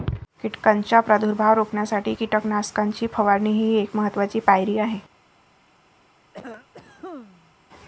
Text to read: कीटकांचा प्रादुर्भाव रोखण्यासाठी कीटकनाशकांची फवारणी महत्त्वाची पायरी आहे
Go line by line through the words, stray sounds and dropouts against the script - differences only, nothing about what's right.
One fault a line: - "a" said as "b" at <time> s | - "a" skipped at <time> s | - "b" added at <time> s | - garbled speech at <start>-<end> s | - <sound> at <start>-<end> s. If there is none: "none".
- "ही एक" added at 3.5 s
- cough at 6.3-7.5 s